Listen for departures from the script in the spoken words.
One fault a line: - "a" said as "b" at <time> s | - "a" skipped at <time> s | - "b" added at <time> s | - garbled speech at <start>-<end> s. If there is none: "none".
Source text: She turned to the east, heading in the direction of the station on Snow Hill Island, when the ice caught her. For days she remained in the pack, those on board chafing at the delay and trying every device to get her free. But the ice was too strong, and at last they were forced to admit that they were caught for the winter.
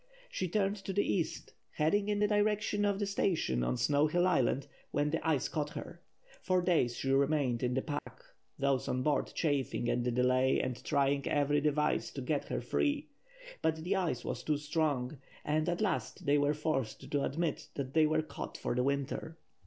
none